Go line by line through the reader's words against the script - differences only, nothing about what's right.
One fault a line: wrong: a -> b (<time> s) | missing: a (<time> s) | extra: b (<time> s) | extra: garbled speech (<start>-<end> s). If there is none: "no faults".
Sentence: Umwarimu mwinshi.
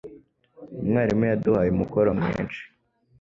extra: yaduhaye umukoro (1.3 s)